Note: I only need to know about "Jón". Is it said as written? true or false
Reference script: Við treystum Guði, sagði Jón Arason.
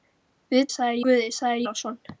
false